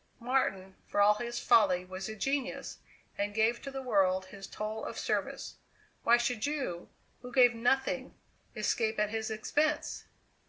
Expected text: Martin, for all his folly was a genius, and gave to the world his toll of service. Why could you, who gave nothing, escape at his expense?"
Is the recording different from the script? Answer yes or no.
yes